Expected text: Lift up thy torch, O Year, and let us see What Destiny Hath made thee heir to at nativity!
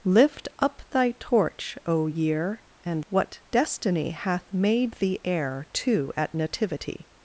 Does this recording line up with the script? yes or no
no